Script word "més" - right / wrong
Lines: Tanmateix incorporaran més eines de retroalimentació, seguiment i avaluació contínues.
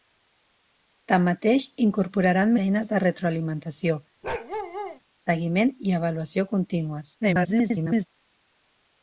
wrong